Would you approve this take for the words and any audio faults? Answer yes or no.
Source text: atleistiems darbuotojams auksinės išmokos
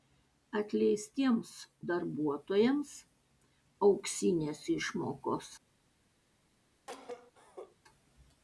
no